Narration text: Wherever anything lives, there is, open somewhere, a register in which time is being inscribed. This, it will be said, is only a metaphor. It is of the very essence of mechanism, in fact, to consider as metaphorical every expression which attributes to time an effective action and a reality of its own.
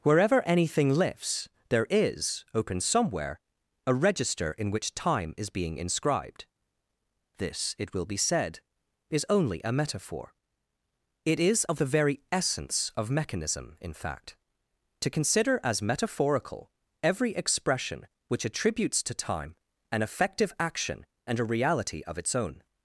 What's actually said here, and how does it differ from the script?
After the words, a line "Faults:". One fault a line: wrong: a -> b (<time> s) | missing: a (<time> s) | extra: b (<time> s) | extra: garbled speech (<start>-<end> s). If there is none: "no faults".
Wherever anything lifts, there is, open somewhere, a register in which time is being inscribed. This, it will be said, is only a metaphor. It is of the very essence of mechanism, in fact, to consider as metaphorical every expression which attributes to time an effective action and a reality of its own.
Faults:
wrong: lives -> lifts (0.9 s)